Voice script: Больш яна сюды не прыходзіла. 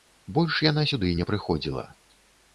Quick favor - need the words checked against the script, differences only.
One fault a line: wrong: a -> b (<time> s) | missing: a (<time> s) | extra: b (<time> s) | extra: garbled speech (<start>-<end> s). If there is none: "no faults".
no faults